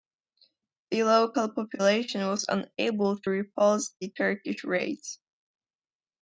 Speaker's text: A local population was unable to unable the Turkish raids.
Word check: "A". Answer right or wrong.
wrong